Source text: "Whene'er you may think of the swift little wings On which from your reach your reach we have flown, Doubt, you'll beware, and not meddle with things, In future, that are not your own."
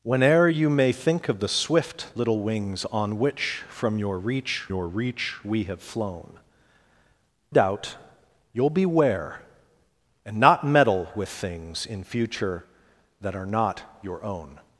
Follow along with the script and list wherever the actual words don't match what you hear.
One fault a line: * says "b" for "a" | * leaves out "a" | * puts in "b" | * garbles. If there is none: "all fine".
all fine